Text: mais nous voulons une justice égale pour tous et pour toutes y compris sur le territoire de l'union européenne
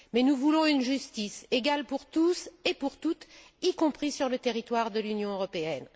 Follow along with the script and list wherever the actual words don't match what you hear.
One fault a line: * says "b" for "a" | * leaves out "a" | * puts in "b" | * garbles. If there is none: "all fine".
all fine